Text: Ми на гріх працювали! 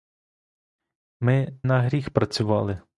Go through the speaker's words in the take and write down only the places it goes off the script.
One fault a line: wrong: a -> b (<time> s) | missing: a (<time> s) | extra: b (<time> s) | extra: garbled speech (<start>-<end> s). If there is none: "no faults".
no faults